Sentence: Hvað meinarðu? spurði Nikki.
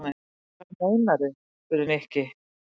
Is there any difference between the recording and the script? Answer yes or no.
no